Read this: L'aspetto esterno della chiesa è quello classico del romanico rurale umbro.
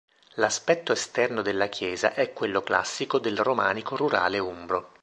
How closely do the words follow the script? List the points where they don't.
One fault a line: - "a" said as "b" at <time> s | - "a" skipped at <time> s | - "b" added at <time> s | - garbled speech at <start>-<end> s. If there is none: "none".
none